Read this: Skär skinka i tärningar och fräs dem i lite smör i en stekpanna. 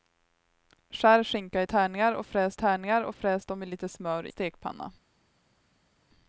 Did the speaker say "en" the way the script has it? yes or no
no